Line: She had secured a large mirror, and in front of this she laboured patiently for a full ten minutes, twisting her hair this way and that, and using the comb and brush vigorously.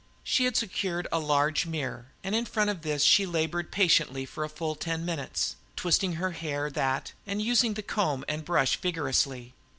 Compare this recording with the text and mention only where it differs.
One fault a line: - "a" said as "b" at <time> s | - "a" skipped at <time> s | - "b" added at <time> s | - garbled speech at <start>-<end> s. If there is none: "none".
- "this way and" skipped at 6.7 s